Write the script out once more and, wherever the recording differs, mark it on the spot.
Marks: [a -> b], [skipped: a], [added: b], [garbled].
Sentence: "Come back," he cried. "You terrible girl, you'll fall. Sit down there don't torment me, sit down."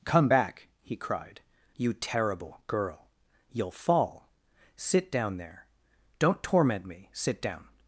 "Come back," he cried. "You terrible girl, you'll fall. Sit down there don't torment me, sit down."